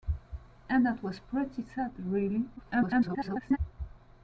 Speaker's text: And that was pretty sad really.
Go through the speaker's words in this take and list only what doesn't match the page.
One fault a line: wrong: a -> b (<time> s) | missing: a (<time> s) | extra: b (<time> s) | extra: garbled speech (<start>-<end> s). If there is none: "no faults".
extra: garbled speech (2.6-3.6 s)